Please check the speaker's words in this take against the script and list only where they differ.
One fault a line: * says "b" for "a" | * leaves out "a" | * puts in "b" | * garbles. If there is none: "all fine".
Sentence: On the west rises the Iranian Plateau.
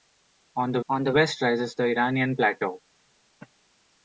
* puts in "on the"